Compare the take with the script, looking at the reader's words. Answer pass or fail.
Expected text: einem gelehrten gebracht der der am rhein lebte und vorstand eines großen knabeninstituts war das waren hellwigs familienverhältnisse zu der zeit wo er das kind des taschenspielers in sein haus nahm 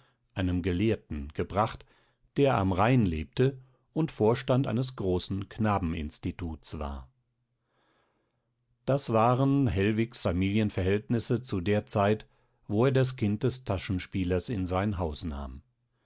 fail